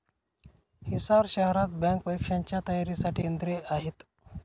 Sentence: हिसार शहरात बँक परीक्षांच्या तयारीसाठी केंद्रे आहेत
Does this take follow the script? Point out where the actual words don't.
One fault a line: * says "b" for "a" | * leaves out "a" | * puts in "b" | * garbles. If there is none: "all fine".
all fine